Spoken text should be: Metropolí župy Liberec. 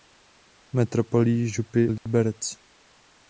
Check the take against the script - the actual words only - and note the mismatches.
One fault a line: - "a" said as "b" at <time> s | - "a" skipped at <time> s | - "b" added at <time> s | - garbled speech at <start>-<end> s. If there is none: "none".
none